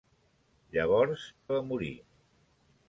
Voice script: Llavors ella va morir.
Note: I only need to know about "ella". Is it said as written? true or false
false